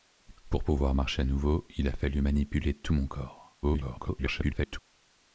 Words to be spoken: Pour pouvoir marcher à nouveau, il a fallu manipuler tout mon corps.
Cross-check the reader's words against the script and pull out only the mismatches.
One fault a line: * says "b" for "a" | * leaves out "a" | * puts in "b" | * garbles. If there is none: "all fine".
* garbles